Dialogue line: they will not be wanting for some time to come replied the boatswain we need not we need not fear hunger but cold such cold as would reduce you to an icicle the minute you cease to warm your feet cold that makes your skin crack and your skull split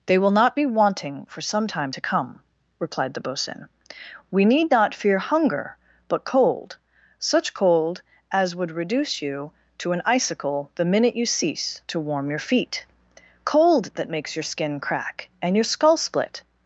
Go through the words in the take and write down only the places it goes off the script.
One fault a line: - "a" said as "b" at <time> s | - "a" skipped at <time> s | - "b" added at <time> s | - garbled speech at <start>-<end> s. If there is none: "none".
- "we need not" skipped at 4.9 s